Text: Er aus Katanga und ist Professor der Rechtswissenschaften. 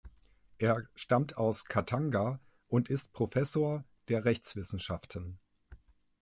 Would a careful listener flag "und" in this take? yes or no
no